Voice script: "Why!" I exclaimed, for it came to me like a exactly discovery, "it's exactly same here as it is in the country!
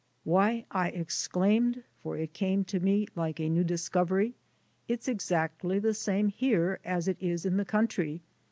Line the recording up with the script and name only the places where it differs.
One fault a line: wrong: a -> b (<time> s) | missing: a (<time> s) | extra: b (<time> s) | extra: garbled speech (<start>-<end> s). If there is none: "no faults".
wrong: exactly -> new (3.5 s)
extra: the (5.8 s)